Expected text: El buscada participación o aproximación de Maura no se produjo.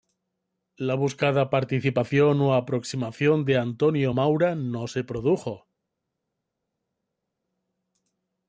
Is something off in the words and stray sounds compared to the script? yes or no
yes